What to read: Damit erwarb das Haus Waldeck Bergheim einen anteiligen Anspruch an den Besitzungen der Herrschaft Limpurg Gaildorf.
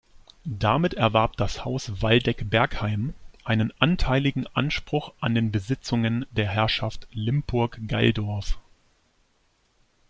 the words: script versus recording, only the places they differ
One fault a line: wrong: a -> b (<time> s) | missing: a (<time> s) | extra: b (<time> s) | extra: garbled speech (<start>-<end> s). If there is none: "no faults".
no faults